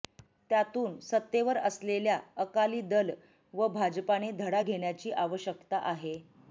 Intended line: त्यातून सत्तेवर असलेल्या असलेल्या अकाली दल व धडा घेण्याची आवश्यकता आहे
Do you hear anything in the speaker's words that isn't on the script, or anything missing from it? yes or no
yes